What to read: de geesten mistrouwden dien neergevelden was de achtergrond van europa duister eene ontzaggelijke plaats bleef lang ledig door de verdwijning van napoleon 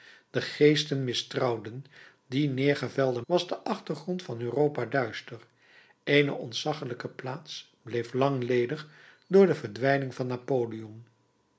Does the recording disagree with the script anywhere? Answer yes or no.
no